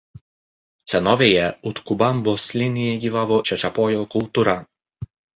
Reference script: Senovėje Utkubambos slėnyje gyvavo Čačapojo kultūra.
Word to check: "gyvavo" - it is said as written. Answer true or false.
true